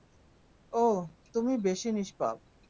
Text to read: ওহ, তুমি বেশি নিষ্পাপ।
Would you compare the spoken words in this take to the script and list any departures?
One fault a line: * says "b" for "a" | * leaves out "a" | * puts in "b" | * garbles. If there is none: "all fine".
all fine